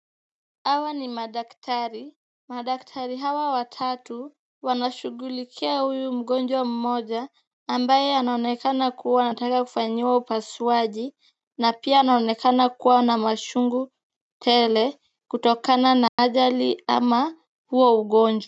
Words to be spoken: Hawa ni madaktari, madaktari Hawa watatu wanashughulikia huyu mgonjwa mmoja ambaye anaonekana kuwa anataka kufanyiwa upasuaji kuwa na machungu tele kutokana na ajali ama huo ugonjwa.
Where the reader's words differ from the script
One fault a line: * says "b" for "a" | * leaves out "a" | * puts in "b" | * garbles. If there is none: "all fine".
* puts in "na pia anaonekana"